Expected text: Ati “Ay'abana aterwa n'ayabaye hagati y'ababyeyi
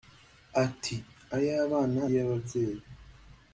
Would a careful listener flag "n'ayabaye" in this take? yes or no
yes